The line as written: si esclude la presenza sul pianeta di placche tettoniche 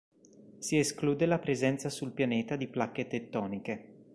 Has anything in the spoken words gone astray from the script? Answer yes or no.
no